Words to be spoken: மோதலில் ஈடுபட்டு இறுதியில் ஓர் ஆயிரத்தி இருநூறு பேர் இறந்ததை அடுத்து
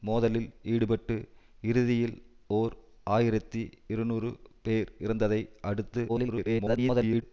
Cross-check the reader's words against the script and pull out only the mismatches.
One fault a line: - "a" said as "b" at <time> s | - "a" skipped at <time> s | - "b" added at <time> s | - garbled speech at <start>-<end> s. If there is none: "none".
- garbled speech at 6.1-7.2 s